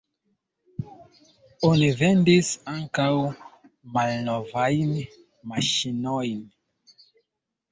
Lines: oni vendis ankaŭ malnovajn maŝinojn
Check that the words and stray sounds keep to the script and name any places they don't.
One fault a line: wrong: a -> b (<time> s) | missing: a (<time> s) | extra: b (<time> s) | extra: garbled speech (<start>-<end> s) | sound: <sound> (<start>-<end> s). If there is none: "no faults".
no faults